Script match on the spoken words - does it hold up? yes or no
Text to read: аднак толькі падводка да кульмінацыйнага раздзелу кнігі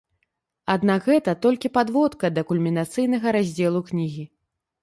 no